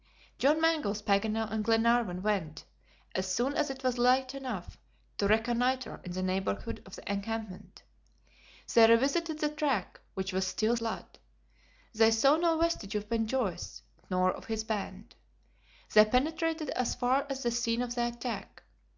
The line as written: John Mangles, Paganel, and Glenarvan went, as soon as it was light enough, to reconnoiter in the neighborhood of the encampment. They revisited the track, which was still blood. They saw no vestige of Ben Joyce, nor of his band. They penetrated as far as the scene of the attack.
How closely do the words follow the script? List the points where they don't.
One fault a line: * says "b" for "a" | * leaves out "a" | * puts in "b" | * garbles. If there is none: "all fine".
all fine